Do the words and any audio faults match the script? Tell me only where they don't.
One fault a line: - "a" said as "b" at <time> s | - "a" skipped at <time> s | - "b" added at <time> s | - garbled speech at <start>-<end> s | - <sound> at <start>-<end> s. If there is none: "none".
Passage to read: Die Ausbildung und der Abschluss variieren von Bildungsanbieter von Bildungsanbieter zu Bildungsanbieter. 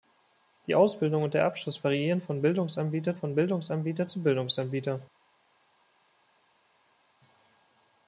none